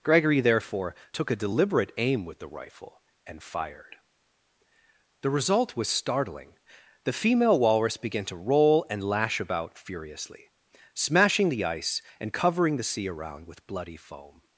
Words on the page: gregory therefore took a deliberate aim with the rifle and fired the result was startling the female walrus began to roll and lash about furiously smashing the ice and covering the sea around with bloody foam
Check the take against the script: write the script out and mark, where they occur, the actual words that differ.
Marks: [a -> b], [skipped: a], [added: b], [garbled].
gregory therefore took a deliberate aim with the rifle and fired the result was startling the female walrus began to roll and lash about furiously smashing the ice and covering the sea around with bloody foam